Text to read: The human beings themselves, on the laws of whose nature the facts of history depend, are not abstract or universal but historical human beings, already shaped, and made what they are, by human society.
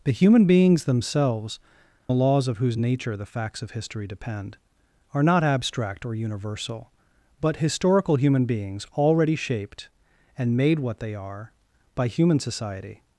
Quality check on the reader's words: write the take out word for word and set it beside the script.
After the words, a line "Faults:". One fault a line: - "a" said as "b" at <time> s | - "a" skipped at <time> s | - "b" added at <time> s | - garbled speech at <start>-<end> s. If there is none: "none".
The human beings themselves, the laws of whose nature the facts of history depend, are not abstract or universal but historical human beings, already shaped, and made what they are, by human society.
Faults:
- "on" skipped at 1.6 s